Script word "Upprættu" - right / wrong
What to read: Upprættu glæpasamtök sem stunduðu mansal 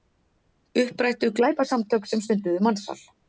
right